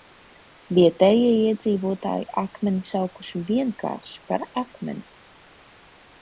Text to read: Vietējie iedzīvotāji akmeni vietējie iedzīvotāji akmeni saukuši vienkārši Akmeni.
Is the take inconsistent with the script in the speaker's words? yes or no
yes